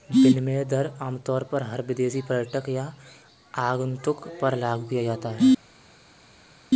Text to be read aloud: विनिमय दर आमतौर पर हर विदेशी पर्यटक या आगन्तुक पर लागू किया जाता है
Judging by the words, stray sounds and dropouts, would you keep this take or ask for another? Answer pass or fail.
pass